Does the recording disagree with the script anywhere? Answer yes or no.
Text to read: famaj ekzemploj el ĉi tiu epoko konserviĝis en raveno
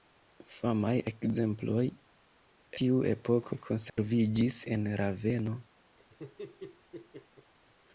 yes